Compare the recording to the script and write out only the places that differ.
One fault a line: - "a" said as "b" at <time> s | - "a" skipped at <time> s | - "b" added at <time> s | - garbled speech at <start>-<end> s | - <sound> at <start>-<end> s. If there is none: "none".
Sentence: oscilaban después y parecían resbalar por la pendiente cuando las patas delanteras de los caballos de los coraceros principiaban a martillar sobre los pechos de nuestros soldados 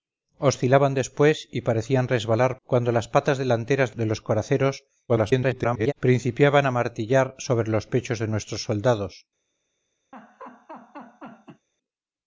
- "por la pendiente" skipped at 2.6 s
- "los caballos" skipped at 4.0 s
- garbled speech at 5.1-5.9 s
- laugh at 10.1-11.7 s